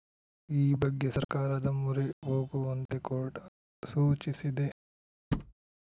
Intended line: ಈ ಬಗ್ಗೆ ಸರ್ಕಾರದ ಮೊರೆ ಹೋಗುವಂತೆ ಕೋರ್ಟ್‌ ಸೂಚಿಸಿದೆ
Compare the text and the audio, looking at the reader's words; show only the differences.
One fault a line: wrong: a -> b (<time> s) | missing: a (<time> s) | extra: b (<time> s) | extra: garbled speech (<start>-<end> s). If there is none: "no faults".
no faults